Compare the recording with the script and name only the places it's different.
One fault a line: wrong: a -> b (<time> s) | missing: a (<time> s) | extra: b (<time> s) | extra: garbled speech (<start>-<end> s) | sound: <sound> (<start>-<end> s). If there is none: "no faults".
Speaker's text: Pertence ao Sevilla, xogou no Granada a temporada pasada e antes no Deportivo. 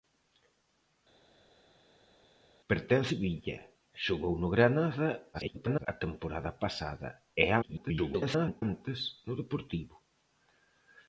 missing: ao (3.1 s)
extra: garbled speech (5.3-5.9 s)
extra: garbled speech (7.6-8.6 s)